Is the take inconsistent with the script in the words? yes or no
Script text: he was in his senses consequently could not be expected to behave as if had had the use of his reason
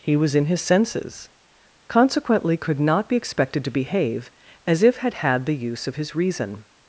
no